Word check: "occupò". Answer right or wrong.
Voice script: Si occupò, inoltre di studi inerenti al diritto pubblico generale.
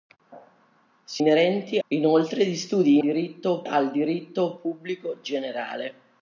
wrong